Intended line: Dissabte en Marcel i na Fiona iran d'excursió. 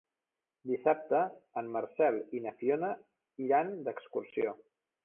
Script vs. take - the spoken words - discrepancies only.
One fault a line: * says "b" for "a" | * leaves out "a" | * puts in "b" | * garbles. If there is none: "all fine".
all fine